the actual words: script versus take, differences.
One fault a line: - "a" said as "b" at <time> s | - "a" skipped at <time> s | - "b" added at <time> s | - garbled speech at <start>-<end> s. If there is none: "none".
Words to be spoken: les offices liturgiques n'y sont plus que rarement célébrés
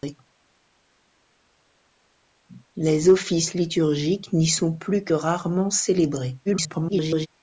- garbled speech at 6.4-7.3 s